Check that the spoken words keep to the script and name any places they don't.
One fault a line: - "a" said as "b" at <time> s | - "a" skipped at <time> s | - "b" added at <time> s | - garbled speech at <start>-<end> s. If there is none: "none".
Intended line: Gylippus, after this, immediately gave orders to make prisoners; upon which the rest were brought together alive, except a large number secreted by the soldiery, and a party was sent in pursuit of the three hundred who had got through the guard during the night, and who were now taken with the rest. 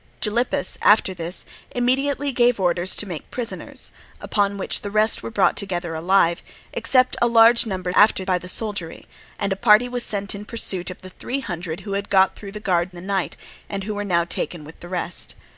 - "secreted" said as "after" at 7.9 s
- "during" skipped at 12.9 s